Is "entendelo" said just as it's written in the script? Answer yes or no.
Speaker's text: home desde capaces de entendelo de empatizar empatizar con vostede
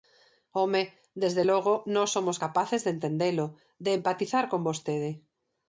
yes